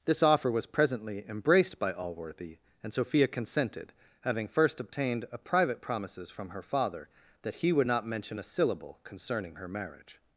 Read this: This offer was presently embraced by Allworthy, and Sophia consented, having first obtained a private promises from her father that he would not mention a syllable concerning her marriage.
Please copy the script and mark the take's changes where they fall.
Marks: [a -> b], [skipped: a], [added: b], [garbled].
This offer was presently embraced by Allworthy, and Sophia consented, having first obtained a private promises from her father that he would not mention a syllable concerning her marriage.